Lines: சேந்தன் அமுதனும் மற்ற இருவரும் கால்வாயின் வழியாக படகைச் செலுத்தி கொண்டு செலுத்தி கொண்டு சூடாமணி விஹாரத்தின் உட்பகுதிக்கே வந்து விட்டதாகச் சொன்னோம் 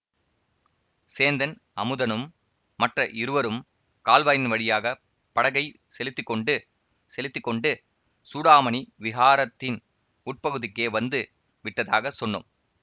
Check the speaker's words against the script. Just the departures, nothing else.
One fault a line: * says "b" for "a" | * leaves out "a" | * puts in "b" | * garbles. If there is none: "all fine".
all fine